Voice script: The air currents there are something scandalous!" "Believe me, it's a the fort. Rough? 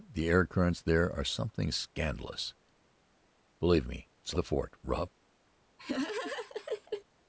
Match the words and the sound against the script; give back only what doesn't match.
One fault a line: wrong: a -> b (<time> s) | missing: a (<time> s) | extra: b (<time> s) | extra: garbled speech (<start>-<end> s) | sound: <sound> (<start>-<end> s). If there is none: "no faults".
sound: laugh (5.8-7.0 s)